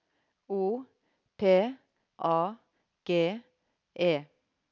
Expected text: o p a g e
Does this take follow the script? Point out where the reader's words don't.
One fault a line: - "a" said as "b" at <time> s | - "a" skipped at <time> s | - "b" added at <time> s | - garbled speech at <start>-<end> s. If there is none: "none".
none